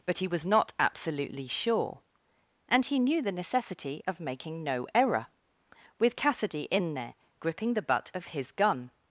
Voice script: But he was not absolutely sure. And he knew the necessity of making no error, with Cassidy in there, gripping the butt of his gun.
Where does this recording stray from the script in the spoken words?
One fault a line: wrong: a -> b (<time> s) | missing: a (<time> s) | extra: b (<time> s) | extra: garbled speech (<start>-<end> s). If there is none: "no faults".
no faults